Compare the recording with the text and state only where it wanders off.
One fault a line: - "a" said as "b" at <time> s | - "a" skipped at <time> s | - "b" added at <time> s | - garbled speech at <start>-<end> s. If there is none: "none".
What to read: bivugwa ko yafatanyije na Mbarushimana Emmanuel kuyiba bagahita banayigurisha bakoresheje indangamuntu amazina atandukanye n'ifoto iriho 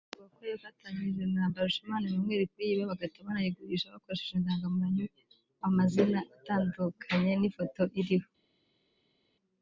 none